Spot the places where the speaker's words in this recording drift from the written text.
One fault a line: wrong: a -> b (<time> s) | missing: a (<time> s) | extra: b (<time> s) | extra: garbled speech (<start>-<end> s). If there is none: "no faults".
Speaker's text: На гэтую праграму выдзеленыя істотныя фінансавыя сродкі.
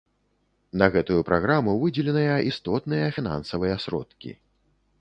no faults